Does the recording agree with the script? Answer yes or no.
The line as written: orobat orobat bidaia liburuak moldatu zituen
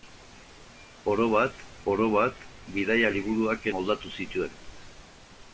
yes